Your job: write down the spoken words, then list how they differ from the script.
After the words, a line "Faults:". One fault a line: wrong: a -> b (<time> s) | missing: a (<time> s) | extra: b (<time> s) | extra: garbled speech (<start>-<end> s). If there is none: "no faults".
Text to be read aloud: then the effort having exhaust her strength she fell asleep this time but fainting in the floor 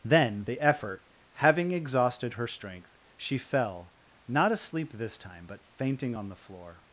then the effort having exhausted her strength she fell not asleep this time but fainting on the floor
Faults:
wrong: exhaust -> exhausted (1.7 s)
extra: not (4.3 s)
wrong: in -> on (6.1 s)